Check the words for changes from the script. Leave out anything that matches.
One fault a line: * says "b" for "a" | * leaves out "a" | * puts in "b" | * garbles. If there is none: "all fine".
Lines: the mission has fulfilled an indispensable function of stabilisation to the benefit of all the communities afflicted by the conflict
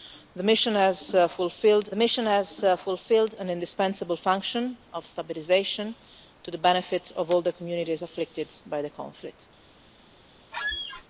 * puts in "mission has fulfilled"